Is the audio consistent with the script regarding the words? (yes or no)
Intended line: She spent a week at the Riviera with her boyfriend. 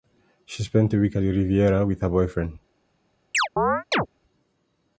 yes